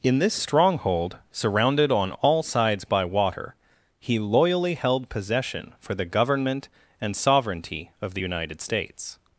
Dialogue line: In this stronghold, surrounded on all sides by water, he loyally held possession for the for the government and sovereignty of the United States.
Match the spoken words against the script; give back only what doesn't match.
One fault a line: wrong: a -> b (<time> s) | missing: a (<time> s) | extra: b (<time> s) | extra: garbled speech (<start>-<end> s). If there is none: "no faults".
missing: for the (6.0 s)